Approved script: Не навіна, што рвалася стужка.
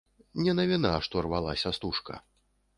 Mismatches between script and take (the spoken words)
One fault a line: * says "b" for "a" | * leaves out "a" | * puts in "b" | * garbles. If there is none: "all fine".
all fine